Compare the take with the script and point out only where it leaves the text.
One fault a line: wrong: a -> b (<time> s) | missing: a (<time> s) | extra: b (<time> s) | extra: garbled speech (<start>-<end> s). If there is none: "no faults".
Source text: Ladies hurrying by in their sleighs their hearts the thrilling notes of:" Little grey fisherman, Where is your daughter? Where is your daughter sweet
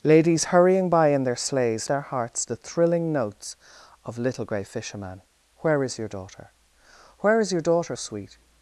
no faults